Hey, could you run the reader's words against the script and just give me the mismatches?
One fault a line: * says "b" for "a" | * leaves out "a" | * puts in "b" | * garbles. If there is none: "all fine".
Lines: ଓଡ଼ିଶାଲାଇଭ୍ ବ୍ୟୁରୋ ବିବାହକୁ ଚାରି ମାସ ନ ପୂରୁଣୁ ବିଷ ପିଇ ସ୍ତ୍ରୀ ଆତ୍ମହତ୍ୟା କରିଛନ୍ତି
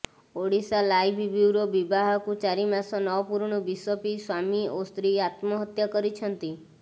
* puts in "ସ୍ୱାମୀ ଓ"